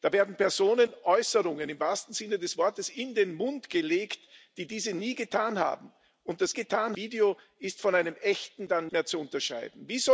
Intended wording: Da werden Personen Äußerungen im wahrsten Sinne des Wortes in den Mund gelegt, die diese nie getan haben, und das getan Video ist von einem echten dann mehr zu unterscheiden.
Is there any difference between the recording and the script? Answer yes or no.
no